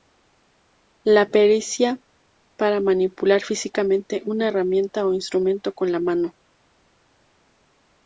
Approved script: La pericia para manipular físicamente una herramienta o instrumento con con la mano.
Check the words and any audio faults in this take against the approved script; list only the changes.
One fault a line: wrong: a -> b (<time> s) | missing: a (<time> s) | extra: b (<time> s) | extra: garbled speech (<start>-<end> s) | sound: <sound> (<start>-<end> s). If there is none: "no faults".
missing: con (5.9 s)